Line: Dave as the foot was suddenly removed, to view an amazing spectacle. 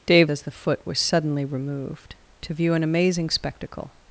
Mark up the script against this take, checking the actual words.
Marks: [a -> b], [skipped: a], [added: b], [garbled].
Dave as the foot was suddenly removed, to view an amazing spectacle.